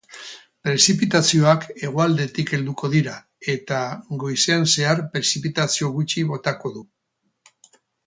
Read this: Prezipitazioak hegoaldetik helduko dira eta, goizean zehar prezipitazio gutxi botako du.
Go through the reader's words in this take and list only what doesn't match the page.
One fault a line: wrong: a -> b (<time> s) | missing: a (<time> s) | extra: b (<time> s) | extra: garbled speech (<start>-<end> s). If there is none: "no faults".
no faults